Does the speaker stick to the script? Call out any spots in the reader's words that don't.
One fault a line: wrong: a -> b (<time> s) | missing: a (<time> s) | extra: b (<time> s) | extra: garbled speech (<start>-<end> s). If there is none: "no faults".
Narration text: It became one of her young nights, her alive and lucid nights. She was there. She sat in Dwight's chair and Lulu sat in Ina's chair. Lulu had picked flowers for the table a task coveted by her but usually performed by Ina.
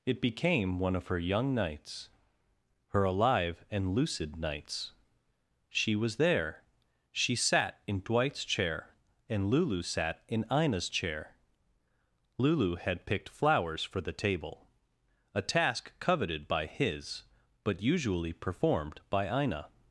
wrong: her -> his (16.6 s)